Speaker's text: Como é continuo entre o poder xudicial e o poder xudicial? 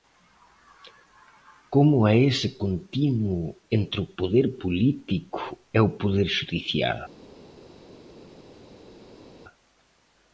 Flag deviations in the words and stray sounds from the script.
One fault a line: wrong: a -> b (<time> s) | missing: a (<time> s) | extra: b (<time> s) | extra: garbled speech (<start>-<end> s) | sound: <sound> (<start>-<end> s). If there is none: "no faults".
extra: ese (2.3 s)
wrong: xudicial -> político (4.6 s)